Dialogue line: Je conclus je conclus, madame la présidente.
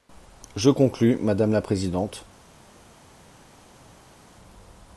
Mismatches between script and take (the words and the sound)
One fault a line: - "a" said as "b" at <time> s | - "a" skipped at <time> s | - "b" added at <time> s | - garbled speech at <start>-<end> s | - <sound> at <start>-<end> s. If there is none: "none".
- "je conclus" skipped at 1.2 s